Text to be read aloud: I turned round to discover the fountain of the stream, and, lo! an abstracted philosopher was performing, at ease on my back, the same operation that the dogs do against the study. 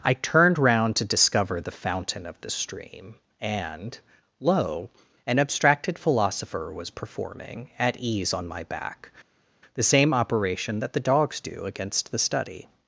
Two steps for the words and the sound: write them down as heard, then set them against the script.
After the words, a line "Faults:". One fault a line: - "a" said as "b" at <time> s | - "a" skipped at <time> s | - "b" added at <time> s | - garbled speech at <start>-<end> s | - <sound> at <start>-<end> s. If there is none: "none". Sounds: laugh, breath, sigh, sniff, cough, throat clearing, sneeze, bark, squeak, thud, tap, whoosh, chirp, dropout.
I turned round to discover the fountain of the stream, and, lo! an abstracted philosopher was performing, at ease on my back, the same operation that the dogs do against the study.
Faults:
none